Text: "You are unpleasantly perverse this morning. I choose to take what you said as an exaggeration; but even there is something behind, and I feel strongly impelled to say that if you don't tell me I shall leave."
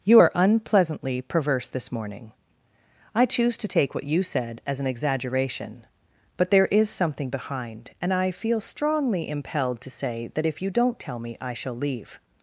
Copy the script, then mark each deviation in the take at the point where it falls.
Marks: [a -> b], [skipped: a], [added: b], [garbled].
"You are unpleasantly perverse this morning. I choose to take what you said as an exaggeration; but [skipped: even] there is something behind, and I feel strongly impelled to say that if you don't tell me I shall leave."